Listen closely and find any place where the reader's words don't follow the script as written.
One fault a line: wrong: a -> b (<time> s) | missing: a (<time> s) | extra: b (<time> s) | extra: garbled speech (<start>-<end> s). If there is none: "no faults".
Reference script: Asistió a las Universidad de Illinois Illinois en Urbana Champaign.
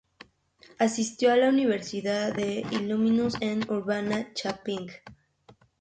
wrong: las -> la (1.4 s)
missing: Illinois (3.3 s)